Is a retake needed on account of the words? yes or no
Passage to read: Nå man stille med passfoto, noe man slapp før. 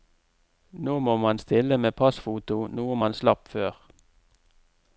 yes